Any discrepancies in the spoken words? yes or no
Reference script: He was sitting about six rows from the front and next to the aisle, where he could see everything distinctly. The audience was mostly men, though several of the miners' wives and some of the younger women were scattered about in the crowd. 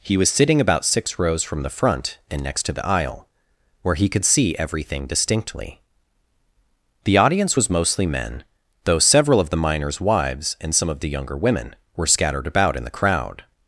no